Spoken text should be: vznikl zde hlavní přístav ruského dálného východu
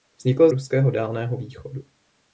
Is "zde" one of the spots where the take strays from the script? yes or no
yes